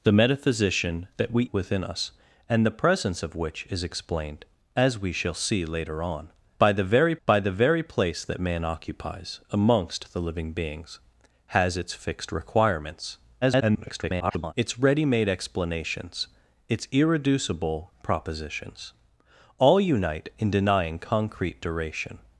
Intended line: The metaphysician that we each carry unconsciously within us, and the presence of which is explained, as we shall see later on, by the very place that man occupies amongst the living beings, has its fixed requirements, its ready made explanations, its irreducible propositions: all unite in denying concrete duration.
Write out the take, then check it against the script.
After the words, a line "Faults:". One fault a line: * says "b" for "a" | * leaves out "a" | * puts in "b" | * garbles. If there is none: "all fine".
The metaphysician that we within us, and the presence of which is explained, as we shall see later on, by the very by the very place that man occupies amongst the living beings, has its fixed requirements, [garbled] its ready made explanations, its irreducible propositions: all unite in denying concrete duration.
Faults:
* leaves out "each carry unconsciously"
* puts in "by the very"
* garbles